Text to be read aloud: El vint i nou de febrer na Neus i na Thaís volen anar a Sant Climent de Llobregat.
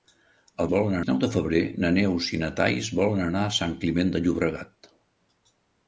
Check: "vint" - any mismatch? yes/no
yes